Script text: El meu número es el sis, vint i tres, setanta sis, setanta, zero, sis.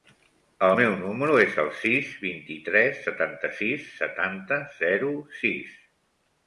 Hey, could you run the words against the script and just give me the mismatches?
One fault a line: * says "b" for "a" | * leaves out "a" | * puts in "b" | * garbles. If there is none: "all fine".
all fine